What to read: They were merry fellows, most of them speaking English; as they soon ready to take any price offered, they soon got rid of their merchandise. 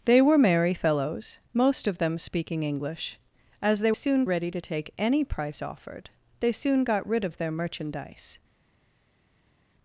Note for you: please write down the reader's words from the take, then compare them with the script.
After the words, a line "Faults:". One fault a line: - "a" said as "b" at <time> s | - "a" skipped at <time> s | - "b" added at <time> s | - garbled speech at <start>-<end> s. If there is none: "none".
They were merry fellows, most of them speaking English; as they soon ready to take any price offered, they soon got rid of their merchandise.
Faults:
none